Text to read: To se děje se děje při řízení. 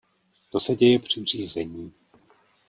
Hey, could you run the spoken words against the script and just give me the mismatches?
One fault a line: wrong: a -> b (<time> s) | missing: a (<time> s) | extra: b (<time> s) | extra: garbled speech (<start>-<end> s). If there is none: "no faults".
missing: se děje (1.0 s)